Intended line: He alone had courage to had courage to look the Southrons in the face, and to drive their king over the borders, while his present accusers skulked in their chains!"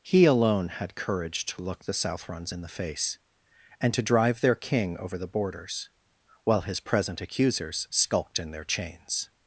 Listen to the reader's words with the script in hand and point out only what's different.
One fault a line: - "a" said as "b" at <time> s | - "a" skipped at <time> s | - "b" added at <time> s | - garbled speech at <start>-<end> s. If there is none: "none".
- "had courage to" skipped at 1.6 s